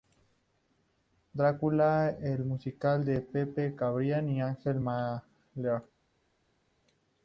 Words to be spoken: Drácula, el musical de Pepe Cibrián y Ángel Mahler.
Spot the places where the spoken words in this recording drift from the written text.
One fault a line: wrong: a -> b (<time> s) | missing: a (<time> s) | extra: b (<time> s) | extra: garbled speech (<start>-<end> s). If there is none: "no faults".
no faults